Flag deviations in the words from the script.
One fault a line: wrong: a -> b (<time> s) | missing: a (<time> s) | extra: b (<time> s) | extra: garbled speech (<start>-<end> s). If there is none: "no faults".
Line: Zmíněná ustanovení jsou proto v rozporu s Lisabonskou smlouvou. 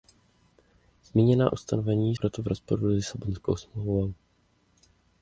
missing: jsou (2.1 s)